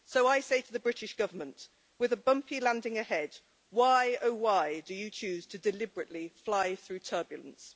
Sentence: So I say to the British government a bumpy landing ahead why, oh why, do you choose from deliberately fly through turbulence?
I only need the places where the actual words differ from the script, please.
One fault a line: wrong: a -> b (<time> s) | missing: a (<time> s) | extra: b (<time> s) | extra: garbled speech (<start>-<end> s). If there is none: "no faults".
extra: with (2.0 s)
wrong: from -> to (5.5 s)